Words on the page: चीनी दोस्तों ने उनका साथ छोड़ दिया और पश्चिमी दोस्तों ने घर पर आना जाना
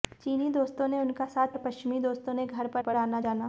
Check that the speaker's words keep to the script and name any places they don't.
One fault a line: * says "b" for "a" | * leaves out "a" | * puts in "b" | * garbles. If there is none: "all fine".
* leaves out "छोड़ दिया"
* puts in "पर"